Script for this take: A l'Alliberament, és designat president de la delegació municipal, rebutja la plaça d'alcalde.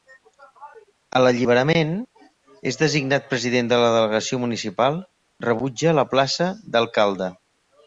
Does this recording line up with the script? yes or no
yes